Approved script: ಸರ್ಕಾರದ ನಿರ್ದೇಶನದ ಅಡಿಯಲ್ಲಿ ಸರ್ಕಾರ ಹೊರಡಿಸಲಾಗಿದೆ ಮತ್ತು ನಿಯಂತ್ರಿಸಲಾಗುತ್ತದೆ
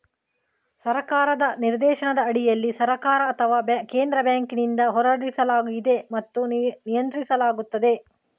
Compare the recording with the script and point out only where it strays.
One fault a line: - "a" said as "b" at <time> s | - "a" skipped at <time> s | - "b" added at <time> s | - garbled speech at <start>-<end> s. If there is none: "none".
- "ಅಥವಾ ಕೇಂದ್ರ ಬ್ಯಾಂಕಿನಿಂದ" added at 3.3 s